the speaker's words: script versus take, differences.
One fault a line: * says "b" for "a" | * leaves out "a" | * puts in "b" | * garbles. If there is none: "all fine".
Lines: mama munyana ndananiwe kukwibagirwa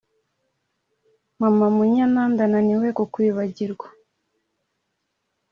all fine